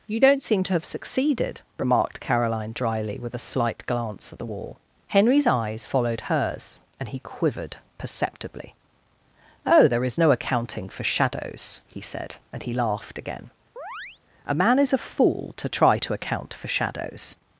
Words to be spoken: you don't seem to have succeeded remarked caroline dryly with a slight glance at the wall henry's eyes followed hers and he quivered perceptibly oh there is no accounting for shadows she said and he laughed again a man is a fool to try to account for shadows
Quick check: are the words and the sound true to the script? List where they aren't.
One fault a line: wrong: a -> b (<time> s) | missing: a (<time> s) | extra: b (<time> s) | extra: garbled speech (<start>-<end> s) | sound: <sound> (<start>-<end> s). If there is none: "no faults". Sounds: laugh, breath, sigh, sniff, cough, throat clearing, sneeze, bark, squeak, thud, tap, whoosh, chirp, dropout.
wrong: she -> he (11.9 s)
sound: chirp (13.8-14.2 s)